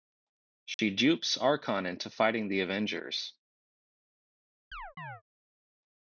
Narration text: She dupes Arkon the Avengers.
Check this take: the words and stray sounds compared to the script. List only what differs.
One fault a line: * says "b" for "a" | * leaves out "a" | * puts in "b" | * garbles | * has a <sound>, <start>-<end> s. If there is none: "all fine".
* has a dropout, 0.7-0.8 s
* puts in "into fighting"
* has a chirp, 4.7-5.2 s